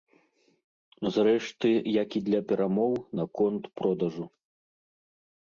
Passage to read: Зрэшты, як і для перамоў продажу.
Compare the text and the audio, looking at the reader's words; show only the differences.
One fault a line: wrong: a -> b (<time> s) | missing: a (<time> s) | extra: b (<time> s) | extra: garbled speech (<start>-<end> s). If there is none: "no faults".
extra: наконт (3.2 s)